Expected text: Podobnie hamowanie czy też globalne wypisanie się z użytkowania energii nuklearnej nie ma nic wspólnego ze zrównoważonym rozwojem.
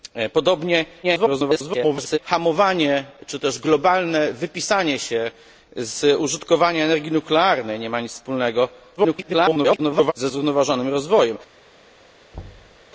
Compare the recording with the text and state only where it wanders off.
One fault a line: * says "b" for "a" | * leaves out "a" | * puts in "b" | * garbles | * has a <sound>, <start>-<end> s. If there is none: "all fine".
* garbles
* garbles
* has a thud, 12.3-12.8 s